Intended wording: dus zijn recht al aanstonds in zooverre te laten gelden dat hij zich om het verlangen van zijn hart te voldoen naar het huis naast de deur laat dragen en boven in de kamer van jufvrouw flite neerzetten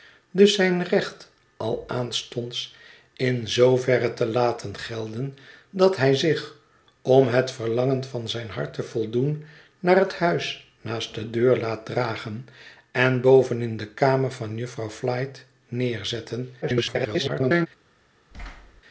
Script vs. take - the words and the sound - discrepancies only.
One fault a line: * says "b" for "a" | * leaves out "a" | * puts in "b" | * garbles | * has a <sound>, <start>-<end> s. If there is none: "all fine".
* garbles
* has a thud, 18.3-18.8 s